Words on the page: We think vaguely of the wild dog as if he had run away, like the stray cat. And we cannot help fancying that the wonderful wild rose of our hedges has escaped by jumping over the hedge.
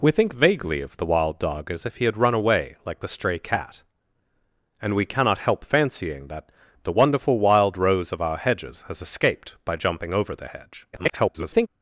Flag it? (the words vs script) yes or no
yes